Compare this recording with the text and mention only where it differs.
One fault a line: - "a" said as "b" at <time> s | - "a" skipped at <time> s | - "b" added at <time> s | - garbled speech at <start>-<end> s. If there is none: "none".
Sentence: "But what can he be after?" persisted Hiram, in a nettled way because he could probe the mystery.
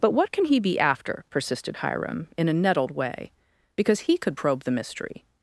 none